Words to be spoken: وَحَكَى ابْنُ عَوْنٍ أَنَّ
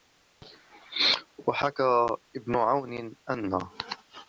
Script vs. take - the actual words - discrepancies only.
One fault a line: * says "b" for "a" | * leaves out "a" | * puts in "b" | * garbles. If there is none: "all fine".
all fine